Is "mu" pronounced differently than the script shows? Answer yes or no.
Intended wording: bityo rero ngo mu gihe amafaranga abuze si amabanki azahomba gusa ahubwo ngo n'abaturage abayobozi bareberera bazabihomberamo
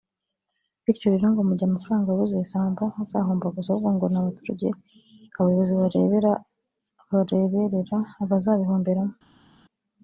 no